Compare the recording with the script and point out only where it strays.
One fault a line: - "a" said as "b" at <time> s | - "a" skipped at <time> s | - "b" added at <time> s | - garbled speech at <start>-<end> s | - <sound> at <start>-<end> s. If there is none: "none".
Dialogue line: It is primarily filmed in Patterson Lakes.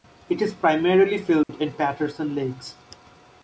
- dropout at 1.4-1.5 s